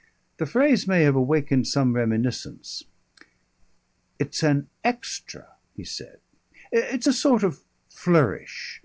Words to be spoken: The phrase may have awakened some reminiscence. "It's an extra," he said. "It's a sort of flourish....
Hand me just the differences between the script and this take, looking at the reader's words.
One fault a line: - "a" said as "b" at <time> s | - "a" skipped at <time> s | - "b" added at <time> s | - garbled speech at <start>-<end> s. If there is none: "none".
none